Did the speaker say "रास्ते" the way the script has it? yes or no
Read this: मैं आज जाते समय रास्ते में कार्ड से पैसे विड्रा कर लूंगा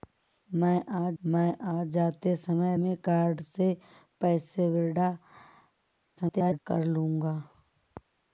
no